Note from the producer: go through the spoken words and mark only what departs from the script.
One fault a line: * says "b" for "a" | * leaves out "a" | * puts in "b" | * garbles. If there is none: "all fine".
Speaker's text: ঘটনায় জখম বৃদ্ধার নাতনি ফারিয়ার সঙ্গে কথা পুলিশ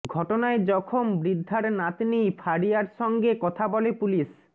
* puts in "বলে"